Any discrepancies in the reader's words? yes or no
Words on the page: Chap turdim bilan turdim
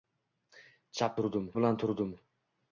no